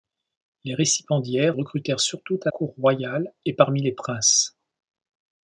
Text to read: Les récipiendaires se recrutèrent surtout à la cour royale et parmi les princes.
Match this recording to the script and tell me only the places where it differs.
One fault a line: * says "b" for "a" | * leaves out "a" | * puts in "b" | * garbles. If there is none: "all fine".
* leaves out "se"
* leaves out "la"